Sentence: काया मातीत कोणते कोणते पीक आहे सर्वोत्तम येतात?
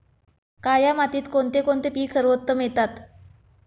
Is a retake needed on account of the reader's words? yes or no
yes